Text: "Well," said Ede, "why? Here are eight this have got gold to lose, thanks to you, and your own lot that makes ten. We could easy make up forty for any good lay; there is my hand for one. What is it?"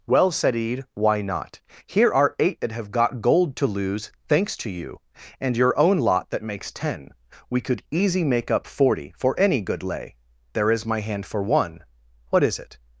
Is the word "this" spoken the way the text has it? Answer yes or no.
no